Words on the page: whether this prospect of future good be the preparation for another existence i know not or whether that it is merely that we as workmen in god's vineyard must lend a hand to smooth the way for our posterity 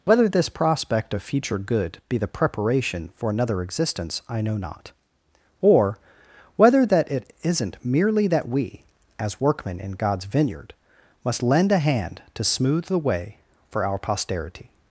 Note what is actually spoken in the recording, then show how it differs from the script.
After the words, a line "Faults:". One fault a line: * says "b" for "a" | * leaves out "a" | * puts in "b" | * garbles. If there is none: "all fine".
whether this prospect of future good be the preparation for another existence i know not or whether that it isn't merely that we as workmen in god's vineyard must lend a hand to smooth the way for our posterity
Faults:
* says "isn't" for "is"